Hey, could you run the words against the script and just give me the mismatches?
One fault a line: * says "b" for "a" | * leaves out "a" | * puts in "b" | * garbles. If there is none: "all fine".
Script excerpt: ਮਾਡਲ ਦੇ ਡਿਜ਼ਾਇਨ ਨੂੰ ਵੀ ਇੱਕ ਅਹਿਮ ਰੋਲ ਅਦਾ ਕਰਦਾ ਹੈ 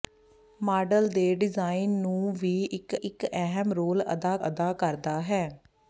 * puts in "ਇੱਕ"
* puts in "ਅਦਾ"